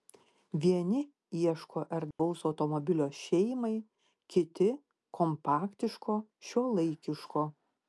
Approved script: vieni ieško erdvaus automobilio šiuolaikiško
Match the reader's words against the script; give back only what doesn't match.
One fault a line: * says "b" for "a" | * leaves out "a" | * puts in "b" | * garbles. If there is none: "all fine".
* puts in "šeimai kiti kompaktiško"